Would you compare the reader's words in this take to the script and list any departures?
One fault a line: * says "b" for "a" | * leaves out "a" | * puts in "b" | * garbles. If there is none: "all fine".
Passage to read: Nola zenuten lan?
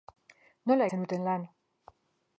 all fine